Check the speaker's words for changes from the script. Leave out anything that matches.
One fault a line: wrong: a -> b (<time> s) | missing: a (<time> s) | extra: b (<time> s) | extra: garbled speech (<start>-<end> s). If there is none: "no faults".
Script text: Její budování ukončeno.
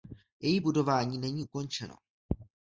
extra: není (1.2 s)